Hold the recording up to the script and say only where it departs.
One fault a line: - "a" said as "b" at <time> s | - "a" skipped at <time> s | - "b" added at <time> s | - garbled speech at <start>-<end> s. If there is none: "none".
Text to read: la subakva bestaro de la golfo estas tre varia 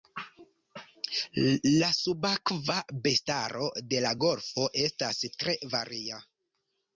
none